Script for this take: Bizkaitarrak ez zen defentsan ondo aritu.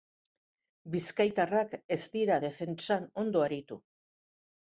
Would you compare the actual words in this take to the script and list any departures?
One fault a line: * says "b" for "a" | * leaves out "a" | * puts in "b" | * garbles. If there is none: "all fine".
* says "dira" for "zen"